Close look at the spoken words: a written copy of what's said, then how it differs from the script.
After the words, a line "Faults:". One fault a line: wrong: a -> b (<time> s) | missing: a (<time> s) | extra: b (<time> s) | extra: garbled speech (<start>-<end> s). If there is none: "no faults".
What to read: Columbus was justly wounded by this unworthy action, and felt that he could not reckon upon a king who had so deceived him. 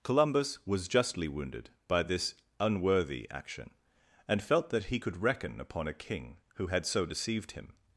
Columbus was justly wounded by this unworthy action, and felt that he could reckon upon a king who had so deceived him.
Faults:
missing: not (5.2 s)